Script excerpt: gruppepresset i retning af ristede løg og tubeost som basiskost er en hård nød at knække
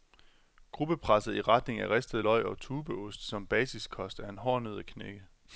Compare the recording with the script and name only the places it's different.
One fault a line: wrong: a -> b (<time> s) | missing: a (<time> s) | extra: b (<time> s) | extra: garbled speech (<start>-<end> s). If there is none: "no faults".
no faults